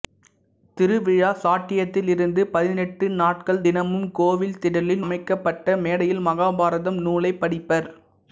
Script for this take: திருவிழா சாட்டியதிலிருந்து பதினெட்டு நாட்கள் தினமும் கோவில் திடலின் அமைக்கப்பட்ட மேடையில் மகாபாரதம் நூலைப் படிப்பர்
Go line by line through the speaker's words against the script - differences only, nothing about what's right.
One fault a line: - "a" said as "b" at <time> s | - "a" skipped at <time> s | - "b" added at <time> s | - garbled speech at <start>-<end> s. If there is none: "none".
none